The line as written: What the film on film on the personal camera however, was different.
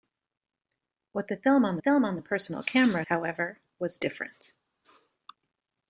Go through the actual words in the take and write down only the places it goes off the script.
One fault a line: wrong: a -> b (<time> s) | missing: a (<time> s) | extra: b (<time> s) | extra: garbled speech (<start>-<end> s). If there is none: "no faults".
no faults